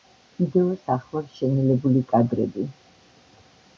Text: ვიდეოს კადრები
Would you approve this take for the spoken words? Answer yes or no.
no